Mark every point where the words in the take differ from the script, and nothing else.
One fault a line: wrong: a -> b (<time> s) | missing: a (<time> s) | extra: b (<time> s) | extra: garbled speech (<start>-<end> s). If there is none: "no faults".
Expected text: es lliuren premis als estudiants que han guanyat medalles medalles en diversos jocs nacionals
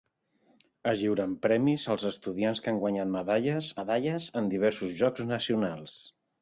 no faults